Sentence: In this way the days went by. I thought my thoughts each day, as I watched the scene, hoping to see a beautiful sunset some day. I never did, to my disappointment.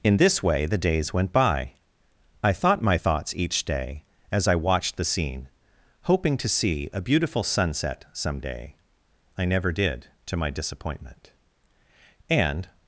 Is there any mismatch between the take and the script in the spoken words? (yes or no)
yes